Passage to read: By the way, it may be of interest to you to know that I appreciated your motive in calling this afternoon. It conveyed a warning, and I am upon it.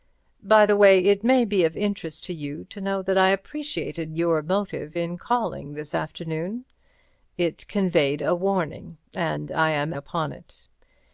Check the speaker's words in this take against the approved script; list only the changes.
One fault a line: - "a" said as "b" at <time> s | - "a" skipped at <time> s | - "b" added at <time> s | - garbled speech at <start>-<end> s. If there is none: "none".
none